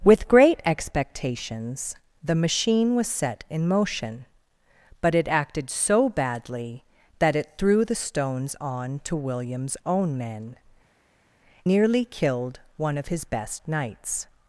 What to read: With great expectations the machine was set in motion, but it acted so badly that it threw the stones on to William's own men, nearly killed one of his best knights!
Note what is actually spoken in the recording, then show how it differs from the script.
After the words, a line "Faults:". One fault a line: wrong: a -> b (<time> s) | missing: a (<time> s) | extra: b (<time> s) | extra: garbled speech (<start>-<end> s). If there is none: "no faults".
With great expectations the machine was set in motion, but it acted so badly that it threw the stones on to William's own men, nearly killed one of his best knights!
Faults:
no faults